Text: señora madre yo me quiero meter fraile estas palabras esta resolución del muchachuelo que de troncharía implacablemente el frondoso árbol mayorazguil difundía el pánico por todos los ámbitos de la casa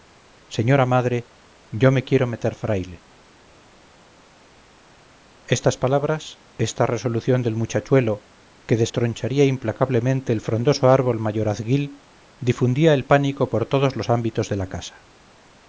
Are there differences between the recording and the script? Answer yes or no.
no